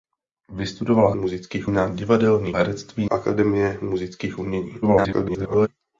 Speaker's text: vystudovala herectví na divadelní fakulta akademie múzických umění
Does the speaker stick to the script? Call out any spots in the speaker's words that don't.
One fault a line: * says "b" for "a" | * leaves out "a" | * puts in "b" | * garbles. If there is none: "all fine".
* says "múzických" for "herectví"
* says "herectví" for "fakulta"
* garbles